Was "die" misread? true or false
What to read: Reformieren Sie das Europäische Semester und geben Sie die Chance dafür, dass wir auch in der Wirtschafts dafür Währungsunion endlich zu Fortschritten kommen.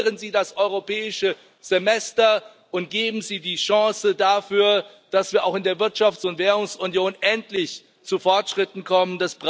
false